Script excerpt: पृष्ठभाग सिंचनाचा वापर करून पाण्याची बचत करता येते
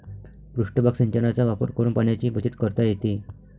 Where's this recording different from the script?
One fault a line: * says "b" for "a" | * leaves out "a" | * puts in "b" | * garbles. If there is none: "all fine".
all fine